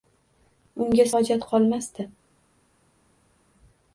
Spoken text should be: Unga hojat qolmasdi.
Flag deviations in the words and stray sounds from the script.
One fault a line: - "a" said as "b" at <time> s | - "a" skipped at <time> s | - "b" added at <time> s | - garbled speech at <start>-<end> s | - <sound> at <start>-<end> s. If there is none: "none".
none